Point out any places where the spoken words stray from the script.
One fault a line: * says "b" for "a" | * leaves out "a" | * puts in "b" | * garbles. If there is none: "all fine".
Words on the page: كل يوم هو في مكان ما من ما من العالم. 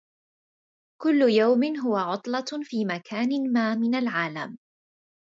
* puts in "عطلة"
* leaves out "ما من"